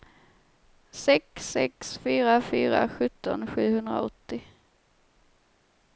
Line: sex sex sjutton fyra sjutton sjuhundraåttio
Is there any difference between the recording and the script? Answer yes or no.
yes